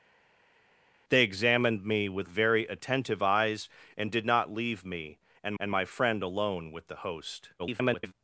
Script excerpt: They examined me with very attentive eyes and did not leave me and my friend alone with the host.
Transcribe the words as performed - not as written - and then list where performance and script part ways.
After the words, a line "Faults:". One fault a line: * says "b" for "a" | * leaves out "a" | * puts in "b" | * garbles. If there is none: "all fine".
They examined me with very attentive eyes and did not leave me and and my friend alone with the host. [garbled]
Faults:
* puts in "and"
* garbles